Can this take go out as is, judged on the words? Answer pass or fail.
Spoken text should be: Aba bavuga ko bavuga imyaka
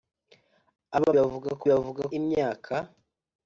pass